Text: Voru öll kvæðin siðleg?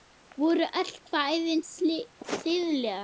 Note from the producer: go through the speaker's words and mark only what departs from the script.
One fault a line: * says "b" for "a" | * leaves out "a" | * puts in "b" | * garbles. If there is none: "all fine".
all fine